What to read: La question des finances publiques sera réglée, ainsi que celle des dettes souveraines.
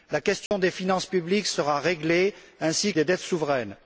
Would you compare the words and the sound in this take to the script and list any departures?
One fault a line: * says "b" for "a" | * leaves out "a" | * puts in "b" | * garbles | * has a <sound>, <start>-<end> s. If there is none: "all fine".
* has a dropout, 0.5-0.5 s
* leaves out "que celle"